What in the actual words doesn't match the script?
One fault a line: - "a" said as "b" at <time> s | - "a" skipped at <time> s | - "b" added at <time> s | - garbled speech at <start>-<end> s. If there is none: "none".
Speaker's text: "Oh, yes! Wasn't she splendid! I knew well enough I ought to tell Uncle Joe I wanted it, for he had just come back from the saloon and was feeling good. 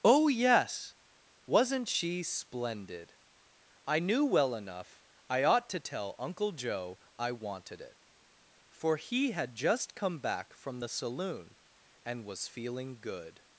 none